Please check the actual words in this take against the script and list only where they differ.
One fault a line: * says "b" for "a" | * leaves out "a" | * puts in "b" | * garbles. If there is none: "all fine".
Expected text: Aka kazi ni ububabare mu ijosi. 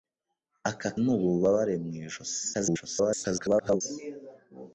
* leaves out "kazi"
* garbles